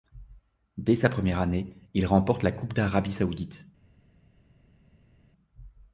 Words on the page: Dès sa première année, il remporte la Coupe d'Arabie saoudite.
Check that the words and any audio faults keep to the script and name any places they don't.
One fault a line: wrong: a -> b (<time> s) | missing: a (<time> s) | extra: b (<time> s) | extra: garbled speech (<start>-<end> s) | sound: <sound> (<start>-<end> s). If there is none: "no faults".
no faults